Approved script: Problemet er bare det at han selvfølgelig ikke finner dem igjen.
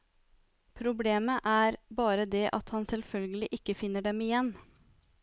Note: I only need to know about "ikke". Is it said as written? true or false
true